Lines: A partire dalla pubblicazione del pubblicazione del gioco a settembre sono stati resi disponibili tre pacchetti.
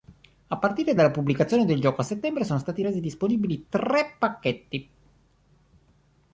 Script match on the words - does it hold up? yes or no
no